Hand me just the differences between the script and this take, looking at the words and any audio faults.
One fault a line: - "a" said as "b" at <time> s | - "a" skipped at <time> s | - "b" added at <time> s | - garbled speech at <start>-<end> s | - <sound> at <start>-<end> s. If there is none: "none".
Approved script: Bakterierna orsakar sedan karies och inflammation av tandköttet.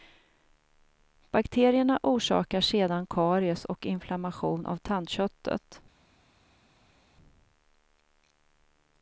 none